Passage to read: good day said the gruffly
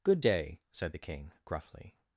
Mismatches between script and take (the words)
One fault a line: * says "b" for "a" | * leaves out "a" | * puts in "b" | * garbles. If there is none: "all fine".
* puts in "king"